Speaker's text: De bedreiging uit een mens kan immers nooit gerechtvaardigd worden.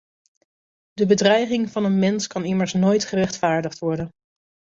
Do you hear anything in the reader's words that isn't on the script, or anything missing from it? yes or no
yes